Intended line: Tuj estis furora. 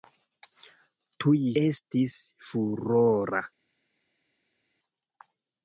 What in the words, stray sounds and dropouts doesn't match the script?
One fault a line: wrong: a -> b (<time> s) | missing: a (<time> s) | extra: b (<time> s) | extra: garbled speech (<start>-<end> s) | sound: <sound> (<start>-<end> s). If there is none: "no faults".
no faults